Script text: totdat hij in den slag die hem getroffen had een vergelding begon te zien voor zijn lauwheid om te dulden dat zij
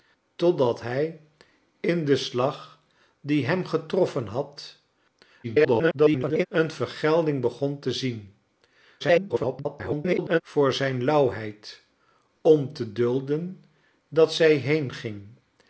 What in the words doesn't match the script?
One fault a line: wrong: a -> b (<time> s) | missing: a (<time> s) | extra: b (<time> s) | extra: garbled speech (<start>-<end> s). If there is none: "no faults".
extra: garbled speech (5.4-6.5 s)
extra: garbled speech (9.0-10.4 s)